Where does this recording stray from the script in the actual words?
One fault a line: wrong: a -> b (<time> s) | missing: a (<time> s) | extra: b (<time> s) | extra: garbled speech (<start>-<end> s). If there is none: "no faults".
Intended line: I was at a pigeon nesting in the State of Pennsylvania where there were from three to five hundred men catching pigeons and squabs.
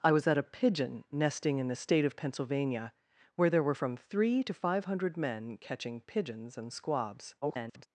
extra: garbled speech (7.4-7.9 s)